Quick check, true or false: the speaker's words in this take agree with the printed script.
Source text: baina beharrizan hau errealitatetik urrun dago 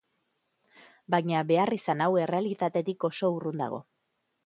false